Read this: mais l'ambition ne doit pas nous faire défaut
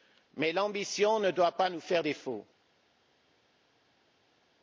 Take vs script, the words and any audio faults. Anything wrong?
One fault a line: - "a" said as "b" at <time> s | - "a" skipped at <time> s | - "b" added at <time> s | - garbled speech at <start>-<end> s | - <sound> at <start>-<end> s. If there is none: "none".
none